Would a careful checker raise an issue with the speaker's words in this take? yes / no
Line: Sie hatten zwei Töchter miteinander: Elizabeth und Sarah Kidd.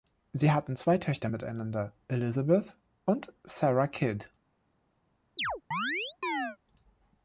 no